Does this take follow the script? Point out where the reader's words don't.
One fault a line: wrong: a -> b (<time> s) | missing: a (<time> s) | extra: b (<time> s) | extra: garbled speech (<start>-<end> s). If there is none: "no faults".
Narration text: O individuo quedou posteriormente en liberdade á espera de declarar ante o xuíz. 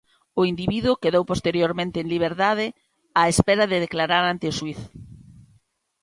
no faults